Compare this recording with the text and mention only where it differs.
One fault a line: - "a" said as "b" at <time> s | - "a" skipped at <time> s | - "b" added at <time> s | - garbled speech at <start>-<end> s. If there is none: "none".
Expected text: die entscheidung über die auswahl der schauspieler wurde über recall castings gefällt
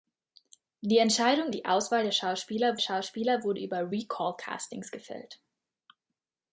- "über" skipped at 1.5 s
- "schauspieler" added at 2.8 s